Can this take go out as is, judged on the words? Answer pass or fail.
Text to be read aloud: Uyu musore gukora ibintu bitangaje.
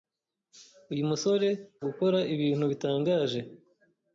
pass